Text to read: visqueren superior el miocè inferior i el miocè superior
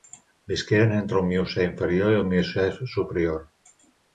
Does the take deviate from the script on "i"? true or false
false